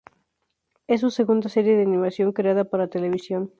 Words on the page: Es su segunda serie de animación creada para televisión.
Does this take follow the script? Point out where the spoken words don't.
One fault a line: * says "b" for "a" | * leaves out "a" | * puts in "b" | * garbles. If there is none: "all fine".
all fine